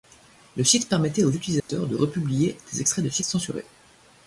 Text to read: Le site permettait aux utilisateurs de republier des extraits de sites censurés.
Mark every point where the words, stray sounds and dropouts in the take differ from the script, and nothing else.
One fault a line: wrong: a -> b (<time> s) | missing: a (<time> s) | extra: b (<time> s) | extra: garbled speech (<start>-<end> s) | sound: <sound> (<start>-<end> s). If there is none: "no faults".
sound: dropout (1.6-1.7 s)